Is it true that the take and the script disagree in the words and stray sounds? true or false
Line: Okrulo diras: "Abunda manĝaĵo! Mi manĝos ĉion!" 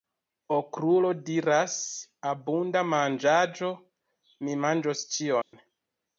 true